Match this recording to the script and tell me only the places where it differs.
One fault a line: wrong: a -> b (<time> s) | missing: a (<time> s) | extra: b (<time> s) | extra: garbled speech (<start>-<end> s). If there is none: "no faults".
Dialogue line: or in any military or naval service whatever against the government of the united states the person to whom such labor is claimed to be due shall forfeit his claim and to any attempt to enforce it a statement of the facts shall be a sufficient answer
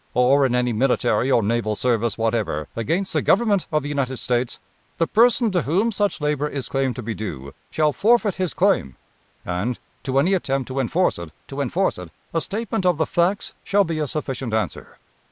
extra: to enforce it (11.5 s)